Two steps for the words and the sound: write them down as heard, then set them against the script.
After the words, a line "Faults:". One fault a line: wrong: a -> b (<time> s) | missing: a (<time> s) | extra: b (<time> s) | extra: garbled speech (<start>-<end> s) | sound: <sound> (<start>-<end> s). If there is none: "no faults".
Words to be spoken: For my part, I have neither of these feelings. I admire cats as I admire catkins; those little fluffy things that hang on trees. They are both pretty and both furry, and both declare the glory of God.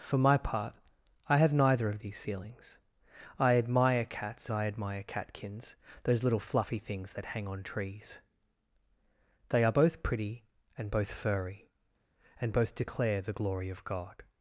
For my part, I have neither of these feelings. I admire cats I admire catkins; those little fluffy things that hang on trees. They are both pretty and both furry, and both declare the glory of God.
Faults:
missing: as (4.5 s)